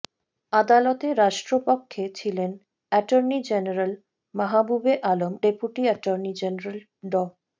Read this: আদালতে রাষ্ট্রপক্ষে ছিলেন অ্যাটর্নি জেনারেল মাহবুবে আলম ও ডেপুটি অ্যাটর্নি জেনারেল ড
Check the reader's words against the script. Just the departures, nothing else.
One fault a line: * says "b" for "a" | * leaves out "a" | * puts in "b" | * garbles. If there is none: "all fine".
* leaves out "ও"